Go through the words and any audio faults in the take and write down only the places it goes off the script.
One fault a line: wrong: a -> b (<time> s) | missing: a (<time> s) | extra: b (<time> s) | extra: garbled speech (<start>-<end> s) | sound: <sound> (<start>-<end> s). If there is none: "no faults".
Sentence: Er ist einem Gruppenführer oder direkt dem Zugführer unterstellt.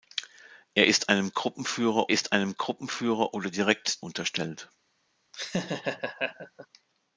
extra: ist einem Gruppenführer (2.1 s)
missing: dem Zugführer (4.1 s)
sound: laugh (5.3-6.7 s)